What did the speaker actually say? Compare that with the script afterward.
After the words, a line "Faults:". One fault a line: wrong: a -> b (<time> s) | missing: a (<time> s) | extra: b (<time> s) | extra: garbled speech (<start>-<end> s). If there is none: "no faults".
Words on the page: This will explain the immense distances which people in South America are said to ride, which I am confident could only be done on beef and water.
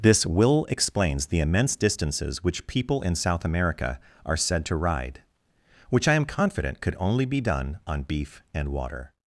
This will explains the immense distances which people in South America are said to ride, which I am confident could only be done on beef and water.
Faults:
wrong: explain -> explains (0.7 s)